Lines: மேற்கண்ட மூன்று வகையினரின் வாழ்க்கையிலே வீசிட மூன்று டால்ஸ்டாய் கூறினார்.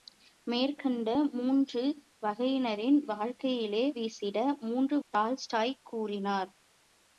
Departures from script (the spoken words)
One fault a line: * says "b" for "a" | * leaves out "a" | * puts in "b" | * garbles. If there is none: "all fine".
all fine